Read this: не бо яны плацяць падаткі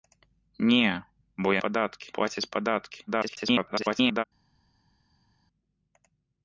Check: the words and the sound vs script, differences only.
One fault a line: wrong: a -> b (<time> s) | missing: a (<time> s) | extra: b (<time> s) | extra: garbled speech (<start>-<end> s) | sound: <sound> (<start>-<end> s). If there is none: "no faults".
wrong: яны -> падаткі (1.7 s)
extra: garbled speech (3.1-4.2 s)